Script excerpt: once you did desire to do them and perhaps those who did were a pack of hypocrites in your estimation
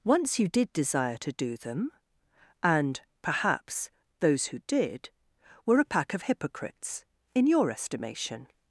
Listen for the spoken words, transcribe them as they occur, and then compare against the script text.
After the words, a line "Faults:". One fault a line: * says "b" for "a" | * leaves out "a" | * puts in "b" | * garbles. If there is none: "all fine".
once you did desire to do them and perhaps those who did were a pack of hypocrites in your estimation
Faults:
all fine